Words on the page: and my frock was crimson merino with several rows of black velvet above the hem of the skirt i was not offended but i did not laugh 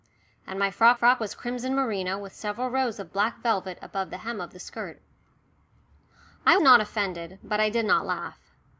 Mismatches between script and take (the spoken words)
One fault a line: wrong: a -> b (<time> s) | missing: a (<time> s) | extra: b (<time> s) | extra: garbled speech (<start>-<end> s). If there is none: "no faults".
extra: frock (0.9 s)
missing: was (6.6 s)